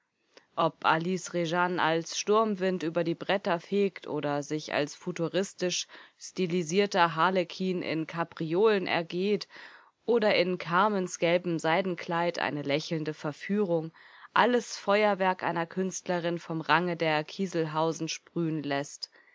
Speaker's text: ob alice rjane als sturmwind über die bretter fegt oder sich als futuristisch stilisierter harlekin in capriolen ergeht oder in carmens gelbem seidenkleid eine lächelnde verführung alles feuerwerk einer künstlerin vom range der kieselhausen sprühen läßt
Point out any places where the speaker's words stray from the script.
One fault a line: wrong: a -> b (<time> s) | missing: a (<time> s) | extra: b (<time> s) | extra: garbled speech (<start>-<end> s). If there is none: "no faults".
no faults